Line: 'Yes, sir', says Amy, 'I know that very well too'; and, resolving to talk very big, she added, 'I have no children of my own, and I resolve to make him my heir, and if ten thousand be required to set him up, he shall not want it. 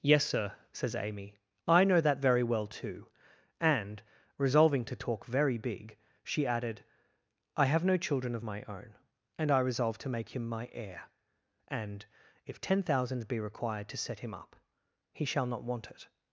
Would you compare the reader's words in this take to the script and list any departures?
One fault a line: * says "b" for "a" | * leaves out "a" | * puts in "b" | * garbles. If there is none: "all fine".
all fine